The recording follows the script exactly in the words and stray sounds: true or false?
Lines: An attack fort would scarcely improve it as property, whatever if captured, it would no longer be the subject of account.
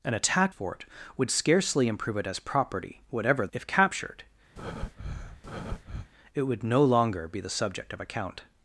false